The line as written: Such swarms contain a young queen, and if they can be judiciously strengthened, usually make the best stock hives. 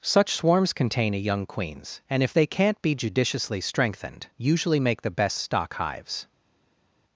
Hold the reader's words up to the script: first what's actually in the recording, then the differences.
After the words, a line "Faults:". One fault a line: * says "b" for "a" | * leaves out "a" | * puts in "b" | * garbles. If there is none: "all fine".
Such swarms contain a young queens, and if they can't be judiciously strengthened, usually make the best stock hives.
Faults:
* says "queens" for "queen"
* says "can't" for "can"